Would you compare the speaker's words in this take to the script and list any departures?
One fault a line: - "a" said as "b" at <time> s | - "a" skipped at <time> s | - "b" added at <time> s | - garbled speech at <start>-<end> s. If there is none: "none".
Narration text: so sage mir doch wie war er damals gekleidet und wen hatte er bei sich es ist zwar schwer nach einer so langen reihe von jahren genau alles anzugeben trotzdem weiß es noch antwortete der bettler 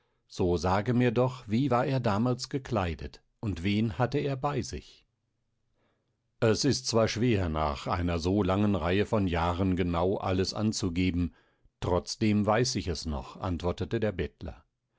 - "ich" added at 12.8 s